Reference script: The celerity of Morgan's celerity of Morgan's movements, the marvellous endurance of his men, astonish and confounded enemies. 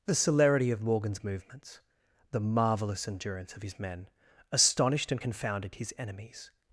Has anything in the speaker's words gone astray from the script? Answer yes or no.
yes